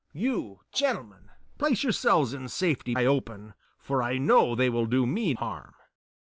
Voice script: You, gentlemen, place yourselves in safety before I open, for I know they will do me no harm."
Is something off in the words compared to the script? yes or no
yes